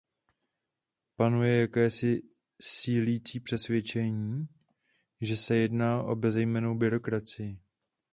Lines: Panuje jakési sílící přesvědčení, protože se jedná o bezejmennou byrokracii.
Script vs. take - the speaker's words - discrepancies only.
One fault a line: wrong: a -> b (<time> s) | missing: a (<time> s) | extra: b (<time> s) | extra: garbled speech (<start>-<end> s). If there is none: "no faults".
wrong: protože -> že (5.2 s)